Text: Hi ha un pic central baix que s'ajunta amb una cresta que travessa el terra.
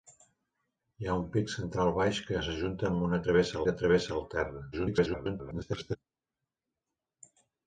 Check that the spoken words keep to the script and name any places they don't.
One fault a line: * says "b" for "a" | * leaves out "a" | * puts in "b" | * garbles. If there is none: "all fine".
* says "travessa" for "cresta"
* garbles